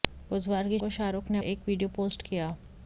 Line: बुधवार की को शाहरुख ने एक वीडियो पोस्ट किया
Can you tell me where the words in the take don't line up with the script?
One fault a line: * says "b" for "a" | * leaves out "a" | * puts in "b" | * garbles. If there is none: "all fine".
all fine